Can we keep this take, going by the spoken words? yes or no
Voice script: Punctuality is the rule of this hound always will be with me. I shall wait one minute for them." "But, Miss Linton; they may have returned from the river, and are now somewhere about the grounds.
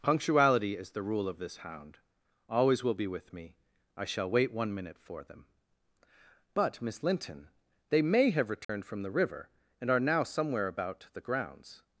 yes